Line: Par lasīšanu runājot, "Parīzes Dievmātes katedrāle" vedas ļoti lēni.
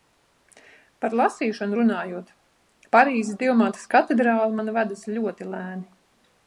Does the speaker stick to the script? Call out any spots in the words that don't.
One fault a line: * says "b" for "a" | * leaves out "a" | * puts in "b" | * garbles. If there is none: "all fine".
* puts in "man"